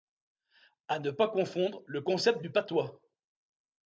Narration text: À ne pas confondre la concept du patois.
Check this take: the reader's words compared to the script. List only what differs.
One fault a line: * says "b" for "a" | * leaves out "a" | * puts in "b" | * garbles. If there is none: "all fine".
* says "le" for "la"